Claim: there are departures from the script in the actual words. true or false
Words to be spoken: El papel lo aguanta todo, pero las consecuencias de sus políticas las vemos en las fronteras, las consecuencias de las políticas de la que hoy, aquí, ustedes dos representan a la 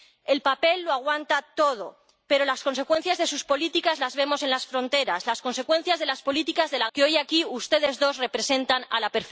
false